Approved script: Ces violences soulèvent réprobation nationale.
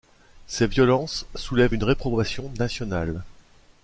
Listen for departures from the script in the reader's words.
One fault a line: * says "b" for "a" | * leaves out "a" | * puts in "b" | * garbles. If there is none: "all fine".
* puts in "une"